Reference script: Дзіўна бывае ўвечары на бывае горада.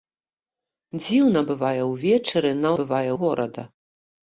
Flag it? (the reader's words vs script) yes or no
no